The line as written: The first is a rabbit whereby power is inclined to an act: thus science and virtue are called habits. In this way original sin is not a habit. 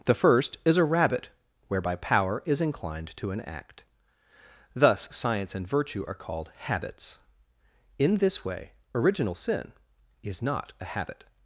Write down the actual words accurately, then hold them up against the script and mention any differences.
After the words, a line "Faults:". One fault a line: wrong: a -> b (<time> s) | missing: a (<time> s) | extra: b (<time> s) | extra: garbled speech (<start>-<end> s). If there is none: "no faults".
The first is a rabbit whereby power is inclined to an act: thus science and virtue are called habits. In this way original sin is not a habit.
Faults:
no faults